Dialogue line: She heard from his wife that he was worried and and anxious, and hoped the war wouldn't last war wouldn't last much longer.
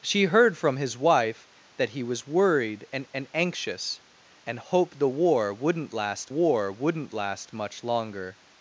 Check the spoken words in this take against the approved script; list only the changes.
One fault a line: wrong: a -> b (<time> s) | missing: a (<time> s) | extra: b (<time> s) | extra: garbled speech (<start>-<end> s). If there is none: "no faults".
no faults